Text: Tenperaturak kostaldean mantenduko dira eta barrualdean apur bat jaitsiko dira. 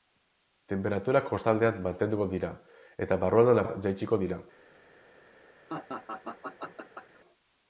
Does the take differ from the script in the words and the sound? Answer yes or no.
yes